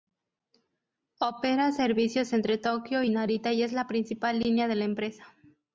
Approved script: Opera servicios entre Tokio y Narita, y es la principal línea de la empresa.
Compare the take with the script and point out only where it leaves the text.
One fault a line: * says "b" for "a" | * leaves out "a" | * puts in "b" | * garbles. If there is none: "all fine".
all fine